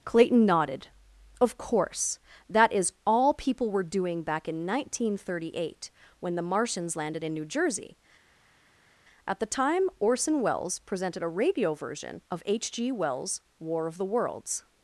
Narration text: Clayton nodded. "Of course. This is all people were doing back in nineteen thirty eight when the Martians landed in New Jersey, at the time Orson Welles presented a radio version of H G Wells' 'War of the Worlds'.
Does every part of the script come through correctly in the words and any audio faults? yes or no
no